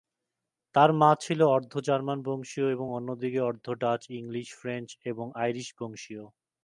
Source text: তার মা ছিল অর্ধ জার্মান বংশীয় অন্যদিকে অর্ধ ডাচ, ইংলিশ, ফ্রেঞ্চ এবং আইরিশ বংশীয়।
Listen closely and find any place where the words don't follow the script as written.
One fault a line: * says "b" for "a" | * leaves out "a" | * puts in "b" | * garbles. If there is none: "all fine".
* puts in "এবং"